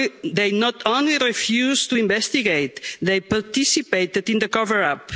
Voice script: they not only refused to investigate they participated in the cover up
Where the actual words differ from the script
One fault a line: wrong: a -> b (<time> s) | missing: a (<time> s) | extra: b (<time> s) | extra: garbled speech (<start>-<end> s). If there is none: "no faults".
no faults